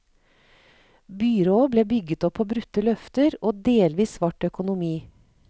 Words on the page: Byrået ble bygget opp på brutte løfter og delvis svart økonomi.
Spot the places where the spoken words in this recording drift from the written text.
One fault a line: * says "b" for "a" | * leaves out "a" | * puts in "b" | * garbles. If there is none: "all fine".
all fine